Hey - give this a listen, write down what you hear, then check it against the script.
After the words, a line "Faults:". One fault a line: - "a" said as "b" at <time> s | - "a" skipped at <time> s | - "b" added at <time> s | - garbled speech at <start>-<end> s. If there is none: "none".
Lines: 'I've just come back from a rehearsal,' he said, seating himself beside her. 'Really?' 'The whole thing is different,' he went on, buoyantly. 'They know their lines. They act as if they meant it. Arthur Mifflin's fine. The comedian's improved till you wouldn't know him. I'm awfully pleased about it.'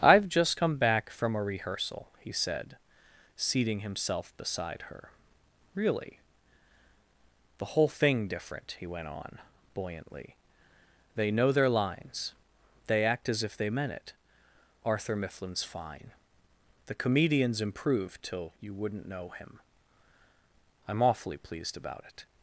'I've just come back from a rehearsal,' he said, seating himself beside her. 'Really?' 'The whole thing different,' he went on, buoyantly. 'They know their lines. They act as if they meant it. Arthur Mifflin's fine. The comedian's improved till you wouldn't know him. I'm awfully pleased about it.'
Faults:
- "is" skipped at 8.3 s